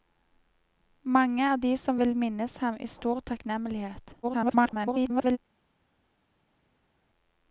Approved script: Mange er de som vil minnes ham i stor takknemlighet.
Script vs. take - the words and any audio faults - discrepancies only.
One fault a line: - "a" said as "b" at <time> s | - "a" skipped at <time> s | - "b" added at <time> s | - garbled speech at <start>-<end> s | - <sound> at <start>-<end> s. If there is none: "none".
- garbled speech at 4.2-5.4 s